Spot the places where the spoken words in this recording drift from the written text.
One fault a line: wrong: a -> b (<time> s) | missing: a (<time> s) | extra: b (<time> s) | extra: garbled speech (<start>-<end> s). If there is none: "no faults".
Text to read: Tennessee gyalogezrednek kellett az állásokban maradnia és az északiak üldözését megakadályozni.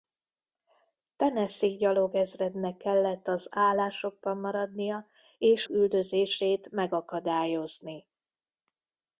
missing: az északiak (5.7 s)